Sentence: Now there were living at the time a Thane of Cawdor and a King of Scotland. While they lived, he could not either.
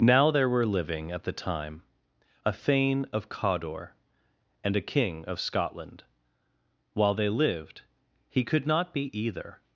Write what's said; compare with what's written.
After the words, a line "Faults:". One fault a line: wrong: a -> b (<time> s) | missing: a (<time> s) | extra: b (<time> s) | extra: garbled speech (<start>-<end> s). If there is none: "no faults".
Now there were living at the time a Thane of Cawdor and a King of Scotland. While they lived, he could not be either.
Faults:
extra: be (8.9 s)